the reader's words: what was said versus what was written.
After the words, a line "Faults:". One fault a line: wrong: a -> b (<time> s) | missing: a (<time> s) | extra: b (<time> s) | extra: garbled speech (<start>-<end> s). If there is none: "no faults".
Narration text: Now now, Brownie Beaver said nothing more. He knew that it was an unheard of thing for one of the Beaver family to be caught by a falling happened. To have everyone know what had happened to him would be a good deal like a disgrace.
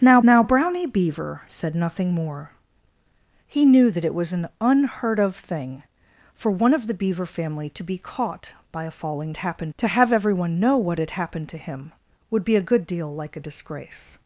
Now now, Brownie Beaver said nothing more. He knew that it was an unheard of thing for one of the Beaver family to be caught by a falling happened. To have everyone know what had happened to him would be a good deal like a disgrace.
Faults:
no faults